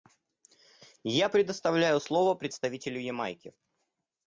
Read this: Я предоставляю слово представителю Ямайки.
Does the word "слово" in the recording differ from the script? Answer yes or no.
no